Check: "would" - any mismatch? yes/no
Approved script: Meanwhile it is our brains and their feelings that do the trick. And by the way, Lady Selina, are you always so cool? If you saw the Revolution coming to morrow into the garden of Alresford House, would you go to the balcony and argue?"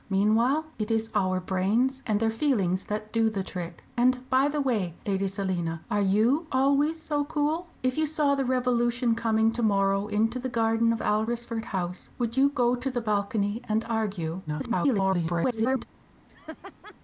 no